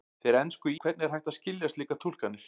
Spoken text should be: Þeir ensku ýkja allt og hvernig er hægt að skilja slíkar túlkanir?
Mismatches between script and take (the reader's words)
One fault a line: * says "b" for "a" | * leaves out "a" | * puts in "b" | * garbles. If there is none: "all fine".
* leaves out "ýkja allt"